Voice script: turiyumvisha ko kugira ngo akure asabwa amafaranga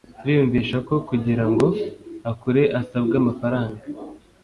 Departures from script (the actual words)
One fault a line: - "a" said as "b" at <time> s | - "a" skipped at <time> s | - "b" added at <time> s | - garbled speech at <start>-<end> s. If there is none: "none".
none